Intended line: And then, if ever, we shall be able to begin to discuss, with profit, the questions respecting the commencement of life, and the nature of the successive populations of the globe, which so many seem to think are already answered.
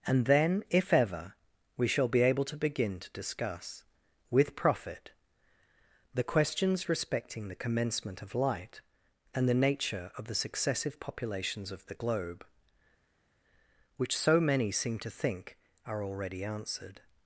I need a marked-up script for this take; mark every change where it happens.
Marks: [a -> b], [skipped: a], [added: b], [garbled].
And then, if ever, we shall be able to begin to discuss, with profit, the questions respecting the commencement of [life, -> light] and the nature of the successive populations of the globe, which so many seem to think are already answered.